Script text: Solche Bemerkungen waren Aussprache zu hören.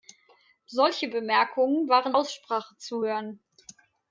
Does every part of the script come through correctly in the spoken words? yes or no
yes